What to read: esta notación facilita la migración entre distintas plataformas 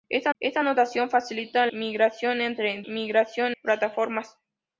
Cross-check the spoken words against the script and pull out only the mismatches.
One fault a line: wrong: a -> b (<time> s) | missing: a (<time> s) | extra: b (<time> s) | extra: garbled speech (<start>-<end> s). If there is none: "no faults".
extra: esta (0.4 s)
missing: la (1.7 s)
wrong: distintas -> migración (2.9 s)